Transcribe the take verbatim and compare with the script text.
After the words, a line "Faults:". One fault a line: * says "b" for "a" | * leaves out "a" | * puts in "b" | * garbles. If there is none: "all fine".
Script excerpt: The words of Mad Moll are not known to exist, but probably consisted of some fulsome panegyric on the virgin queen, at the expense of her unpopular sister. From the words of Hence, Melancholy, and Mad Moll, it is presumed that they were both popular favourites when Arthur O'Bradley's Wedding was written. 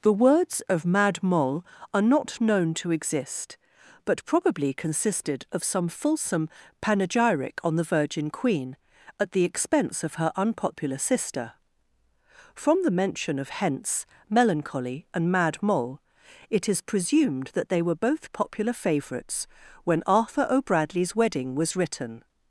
The words of Mad Moll are not known to exist, but probably consisted of some fulsome panegyric on the virgin queen, at the expense of her unpopular sister. From the mention of Hence, Melancholy, and Mad Moll, it is presumed that they were both popular favourites when Arthur O'Bradley's Wedding was written.
Faults:
* says "mention" for "words"